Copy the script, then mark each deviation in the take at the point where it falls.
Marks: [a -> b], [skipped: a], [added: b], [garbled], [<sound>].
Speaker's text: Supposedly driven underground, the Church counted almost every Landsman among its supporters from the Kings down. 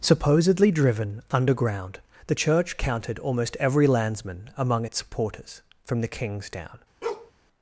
Supposedly driven underground, the Church counted almost every Landsman among its supporters from the Kings down. [bark]